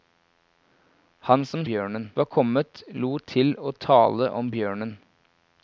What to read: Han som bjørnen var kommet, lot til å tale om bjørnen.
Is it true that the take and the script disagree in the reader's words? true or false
false